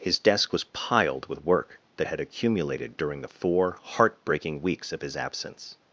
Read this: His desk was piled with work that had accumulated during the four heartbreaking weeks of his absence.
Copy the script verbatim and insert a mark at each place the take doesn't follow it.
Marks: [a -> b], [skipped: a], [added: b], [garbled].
His desk was piled with work that had accumulated during the four heartbreaking weeks of his absence.